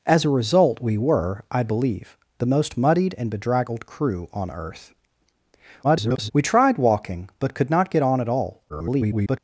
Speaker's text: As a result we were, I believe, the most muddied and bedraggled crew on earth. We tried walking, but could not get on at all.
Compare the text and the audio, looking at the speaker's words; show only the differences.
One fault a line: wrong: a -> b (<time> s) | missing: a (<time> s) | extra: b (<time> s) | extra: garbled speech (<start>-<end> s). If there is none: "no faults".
extra: garbled speech (5.8-6.3 s)
extra: garbled speech (8.7-9.4 s)